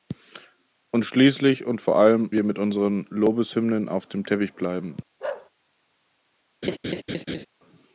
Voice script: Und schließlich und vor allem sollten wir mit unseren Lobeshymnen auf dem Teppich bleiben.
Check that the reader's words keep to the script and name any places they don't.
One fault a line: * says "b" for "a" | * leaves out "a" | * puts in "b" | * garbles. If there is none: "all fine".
* leaves out "sollten"